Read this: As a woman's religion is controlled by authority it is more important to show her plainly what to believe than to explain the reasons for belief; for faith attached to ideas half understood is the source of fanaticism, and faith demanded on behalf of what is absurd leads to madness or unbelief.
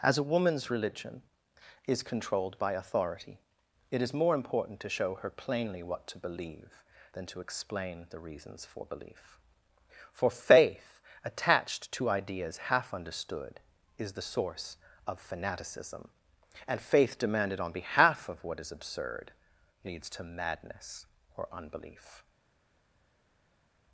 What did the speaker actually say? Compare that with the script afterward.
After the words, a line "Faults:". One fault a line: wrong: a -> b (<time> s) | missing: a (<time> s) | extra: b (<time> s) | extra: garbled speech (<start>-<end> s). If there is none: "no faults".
As a woman's religion is controlled by authority it is more important to show her plainly what to believe than to explain the reasons for belief; for faith attached to ideas half understood is the source of fanaticism, and faith demanded on behalf of what is absurd leads to madness or unbelief.
Faults:
no faults